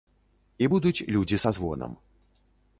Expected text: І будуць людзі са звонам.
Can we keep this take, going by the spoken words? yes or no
yes